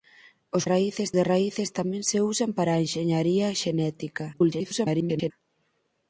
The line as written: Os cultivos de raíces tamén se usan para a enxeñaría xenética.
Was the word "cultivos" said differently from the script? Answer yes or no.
yes